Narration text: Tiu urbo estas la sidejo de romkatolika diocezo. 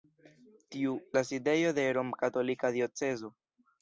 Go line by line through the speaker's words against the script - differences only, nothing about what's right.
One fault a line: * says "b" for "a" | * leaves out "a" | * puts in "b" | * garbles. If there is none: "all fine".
* leaves out "urbo estas"